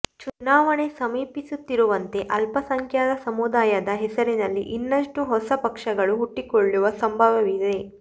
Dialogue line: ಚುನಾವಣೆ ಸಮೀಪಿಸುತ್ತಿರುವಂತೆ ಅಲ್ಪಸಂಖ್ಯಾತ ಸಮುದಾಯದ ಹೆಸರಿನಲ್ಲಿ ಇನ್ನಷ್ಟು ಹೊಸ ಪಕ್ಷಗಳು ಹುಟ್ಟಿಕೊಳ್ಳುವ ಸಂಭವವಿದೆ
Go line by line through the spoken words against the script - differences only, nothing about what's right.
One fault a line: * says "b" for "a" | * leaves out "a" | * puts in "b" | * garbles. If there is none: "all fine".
all fine